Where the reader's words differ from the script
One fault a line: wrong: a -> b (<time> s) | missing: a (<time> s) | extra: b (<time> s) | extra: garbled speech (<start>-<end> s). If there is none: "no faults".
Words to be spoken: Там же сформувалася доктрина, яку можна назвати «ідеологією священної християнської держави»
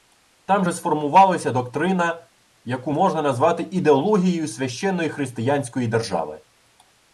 no faults